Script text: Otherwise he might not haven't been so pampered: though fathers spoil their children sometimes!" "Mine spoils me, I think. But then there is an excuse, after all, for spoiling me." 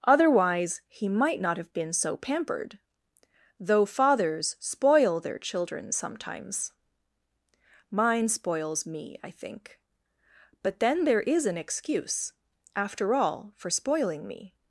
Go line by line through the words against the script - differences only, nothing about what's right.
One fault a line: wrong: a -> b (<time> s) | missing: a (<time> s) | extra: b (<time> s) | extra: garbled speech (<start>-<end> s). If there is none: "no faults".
wrong: haven't -> have (1.6 s)